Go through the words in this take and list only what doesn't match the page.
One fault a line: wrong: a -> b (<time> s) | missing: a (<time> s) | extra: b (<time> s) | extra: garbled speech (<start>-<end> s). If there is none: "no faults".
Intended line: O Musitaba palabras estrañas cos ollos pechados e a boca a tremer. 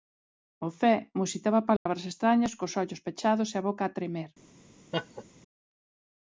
extra: Zé (0.8 s)